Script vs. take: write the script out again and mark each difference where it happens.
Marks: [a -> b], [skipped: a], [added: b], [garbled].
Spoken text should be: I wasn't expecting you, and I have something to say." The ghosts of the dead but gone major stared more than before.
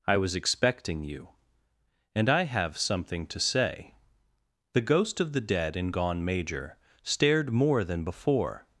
I [wasn't -> was] expecting you, and I have something to say." The [ghosts -> ghost] of the dead [but -> and] gone major stared more than before.